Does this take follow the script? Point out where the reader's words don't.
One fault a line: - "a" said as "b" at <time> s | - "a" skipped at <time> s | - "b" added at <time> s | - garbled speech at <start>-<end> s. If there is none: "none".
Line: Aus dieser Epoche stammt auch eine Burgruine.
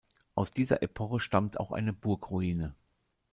none